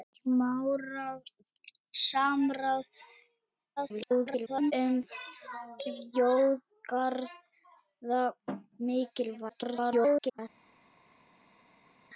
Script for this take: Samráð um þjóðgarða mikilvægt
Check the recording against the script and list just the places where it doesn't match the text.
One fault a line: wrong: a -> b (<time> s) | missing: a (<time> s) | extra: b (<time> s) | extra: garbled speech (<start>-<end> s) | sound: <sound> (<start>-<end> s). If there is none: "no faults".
extra: garbled speech (3.8-4.7 s)
extra: garbled speech (9.5-10.4 s)